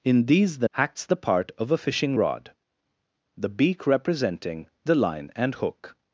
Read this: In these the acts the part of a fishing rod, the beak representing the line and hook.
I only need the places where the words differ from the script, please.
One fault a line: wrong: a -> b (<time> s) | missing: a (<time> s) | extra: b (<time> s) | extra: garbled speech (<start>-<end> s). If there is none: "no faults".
no faults